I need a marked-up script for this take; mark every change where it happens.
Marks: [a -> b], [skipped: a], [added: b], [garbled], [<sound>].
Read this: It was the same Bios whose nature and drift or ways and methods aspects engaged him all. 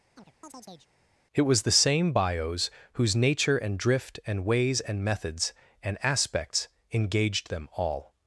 [chirp] It was the same Bios whose nature and drift [or -> and] ways and methods [added: and] aspects engaged [him -> them] all.